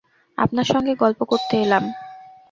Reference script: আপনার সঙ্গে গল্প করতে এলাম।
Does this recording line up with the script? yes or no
yes